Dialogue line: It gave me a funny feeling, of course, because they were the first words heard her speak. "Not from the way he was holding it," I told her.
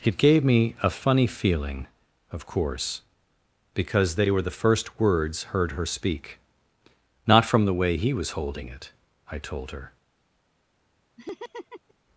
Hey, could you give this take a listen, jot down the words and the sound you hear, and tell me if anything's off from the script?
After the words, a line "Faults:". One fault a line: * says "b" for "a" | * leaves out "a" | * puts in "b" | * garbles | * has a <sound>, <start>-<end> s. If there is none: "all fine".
It gave me a funny feeling, of course, because they were the first words heard her speak. "Not from the way he was holding it," I told her.
Faults:
* has a laugh, 11.2-11.9 s